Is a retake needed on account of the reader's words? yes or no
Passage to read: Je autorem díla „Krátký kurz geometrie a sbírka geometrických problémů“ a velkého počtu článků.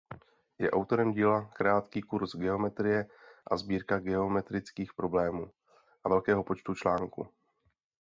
no